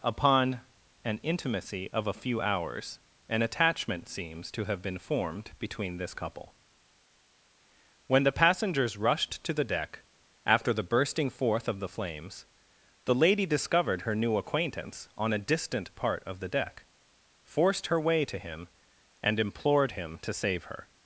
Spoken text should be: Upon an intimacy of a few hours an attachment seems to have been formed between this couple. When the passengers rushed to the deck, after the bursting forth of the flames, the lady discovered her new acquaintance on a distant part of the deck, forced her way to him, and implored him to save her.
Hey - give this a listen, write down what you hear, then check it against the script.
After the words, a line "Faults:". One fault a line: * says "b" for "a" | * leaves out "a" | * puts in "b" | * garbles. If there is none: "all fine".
Upon an intimacy of a few hours an attachment seems to have been formed between this couple. When the passengers rushed to the deck, after the bursting forth of the flames, the lady discovered her new acquaintance on a distant part of the deck, forced her way to him, and implored him to save her.
Faults:
all fine